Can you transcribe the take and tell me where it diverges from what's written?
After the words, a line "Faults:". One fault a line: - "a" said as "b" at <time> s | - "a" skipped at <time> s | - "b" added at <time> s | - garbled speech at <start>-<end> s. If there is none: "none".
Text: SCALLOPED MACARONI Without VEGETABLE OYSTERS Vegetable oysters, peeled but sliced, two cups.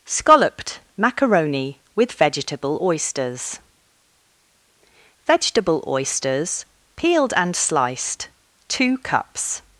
SCALLOPED MACARONI WITH VEGETABLE OYSTERS Vegetable oysters, peeled and sliced, two cups.
Faults:
- "Without" said as "WITH" at 1.9 s
- "but" said as "and" at 7.3 s